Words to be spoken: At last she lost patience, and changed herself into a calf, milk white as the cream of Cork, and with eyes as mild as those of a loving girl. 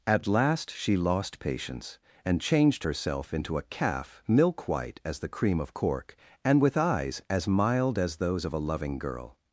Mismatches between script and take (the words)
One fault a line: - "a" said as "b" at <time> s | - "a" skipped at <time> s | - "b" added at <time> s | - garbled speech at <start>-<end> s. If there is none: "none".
none